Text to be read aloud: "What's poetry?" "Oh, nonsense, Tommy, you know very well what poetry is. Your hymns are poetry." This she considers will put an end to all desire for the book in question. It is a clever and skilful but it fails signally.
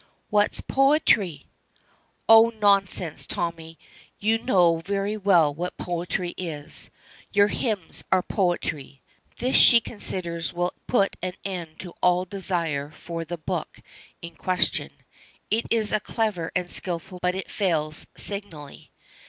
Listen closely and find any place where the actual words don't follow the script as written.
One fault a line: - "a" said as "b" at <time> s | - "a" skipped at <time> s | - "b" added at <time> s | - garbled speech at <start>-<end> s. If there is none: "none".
none